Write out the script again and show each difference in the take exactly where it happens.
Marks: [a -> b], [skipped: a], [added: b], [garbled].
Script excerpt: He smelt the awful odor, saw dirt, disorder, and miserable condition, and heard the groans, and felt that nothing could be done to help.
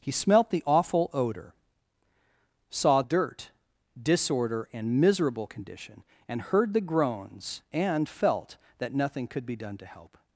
He smelt the awful odor, saw dirt, disorder, and miserable condition, and heard the groans, and felt that nothing could be done to help.